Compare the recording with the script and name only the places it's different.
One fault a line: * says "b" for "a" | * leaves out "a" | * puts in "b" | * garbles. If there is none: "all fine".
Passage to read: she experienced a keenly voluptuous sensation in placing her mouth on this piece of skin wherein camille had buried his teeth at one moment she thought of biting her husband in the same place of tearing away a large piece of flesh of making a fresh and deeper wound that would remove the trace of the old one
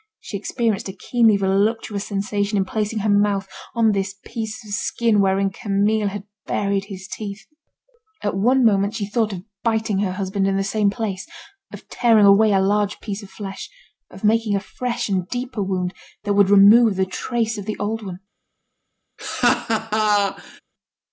all fine